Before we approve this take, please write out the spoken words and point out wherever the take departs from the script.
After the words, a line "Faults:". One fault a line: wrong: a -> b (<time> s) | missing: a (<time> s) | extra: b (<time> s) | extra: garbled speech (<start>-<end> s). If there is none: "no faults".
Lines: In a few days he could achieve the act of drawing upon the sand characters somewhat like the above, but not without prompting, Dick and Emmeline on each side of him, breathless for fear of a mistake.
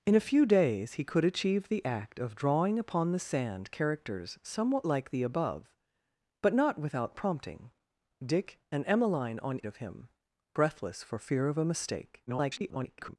In a few days he could achieve the act of drawing upon the sand characters somewhat like the above, but not without prompting, Dick and Emmeline on of him, breathless for fear of a mistake. [garbled]
Faults:
missing: each side (9.6 s)
extra: garbled speech (12.3-13.2 s)